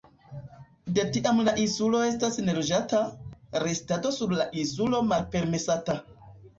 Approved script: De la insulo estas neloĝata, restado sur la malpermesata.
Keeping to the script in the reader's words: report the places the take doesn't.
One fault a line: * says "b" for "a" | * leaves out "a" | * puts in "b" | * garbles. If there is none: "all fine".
* puts in "tiam"
* puts in "insulo"